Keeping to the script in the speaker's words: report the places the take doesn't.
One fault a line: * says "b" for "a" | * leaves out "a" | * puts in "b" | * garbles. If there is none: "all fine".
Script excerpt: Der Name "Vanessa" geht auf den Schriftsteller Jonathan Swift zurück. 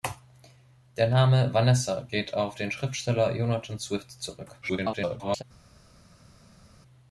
* garbles